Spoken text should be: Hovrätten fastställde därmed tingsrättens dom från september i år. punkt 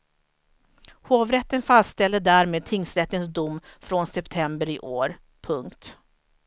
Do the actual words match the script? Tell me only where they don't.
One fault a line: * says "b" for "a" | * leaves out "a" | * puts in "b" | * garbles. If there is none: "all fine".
all fine